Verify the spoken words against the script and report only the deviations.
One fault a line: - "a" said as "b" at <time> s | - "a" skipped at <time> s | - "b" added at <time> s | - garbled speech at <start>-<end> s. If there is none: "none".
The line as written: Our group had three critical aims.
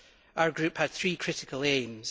none